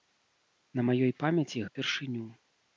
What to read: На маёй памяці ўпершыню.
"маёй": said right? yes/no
yes